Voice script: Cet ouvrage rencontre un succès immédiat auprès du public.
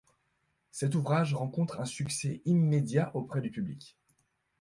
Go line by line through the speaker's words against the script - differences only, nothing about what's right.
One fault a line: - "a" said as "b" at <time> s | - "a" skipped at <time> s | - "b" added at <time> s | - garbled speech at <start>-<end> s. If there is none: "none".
none